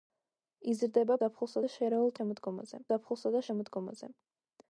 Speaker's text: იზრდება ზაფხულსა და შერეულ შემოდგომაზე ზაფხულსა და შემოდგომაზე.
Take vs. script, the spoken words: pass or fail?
pass